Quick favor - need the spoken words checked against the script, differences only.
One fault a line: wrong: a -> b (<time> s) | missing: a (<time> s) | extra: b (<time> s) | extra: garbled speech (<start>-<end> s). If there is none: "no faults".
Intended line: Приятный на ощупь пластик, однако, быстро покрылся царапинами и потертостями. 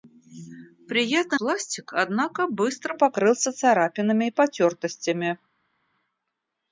missing: на ощупь (1.4 s)